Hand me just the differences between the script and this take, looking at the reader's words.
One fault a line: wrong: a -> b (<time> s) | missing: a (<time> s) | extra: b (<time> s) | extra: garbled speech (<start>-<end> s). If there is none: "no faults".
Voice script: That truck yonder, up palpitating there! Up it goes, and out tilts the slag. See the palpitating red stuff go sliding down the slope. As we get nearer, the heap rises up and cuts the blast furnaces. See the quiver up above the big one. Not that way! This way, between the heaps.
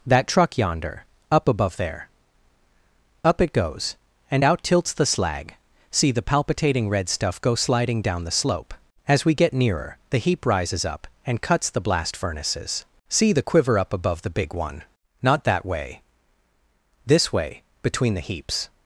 wrong: palpitating -> above (1.5 s)